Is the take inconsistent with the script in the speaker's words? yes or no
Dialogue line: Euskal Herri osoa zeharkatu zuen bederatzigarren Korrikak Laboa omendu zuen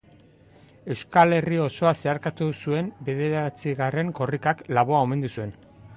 no